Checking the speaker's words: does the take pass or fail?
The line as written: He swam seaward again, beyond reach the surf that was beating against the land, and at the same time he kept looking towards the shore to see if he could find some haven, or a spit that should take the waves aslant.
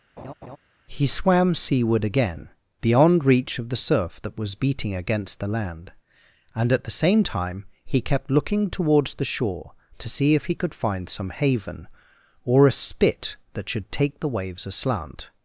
fail